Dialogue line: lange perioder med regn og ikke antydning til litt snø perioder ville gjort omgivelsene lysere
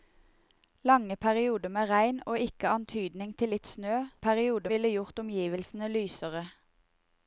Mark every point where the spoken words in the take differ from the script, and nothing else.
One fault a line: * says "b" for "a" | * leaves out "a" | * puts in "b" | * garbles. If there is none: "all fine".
all fine